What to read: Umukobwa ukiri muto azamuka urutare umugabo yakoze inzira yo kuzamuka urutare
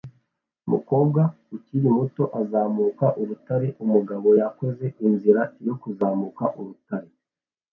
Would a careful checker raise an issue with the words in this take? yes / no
no